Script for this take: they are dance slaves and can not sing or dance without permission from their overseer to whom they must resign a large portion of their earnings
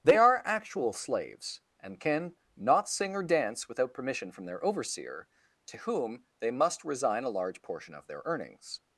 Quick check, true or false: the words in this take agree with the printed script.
false